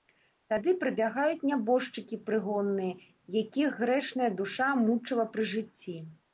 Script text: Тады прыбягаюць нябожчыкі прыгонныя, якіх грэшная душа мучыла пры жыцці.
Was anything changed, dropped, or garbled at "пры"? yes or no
no